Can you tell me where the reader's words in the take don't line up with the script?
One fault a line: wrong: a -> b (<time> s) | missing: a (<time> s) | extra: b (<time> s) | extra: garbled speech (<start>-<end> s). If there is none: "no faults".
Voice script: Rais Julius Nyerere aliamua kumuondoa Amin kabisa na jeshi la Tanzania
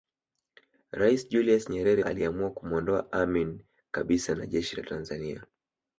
no faults